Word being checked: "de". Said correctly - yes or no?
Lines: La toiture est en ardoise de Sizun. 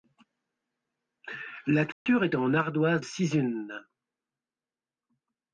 no